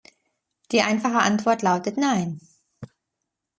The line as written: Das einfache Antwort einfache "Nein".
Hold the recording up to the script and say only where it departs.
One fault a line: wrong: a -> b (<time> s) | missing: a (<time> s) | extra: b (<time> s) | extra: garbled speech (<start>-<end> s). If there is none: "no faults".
wrong: Das -> Die (0.7 s)
wrong: einfache -> lautet (1.6 s)